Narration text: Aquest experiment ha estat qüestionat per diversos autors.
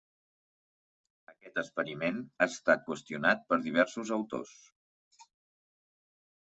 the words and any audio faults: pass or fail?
pass